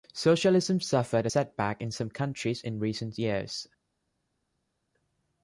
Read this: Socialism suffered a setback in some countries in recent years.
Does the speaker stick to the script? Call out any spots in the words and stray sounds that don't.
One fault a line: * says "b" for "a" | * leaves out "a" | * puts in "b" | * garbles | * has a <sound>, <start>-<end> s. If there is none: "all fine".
all fine